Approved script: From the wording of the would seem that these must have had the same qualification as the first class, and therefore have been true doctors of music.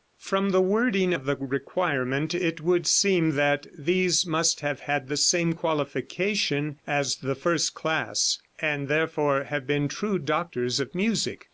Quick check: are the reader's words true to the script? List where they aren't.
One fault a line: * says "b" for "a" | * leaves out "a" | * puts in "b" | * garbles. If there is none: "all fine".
* puts in "requirement it"